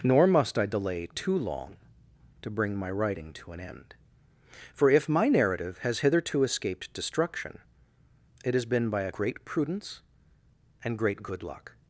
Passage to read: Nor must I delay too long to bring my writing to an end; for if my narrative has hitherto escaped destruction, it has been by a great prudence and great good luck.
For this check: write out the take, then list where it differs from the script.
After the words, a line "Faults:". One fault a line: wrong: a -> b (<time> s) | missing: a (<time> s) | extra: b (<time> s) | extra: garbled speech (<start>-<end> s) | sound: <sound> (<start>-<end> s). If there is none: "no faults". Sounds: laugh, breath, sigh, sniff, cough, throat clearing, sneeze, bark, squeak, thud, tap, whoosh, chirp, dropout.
Nor must I delay too long to bring my writing to an end; for if my narrative has hitherto escaped destruction, it has been by a great prudence and great good luck.
Faults:
no faults